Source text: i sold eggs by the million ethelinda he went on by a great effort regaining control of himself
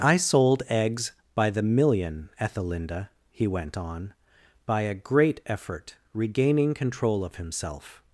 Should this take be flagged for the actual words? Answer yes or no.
no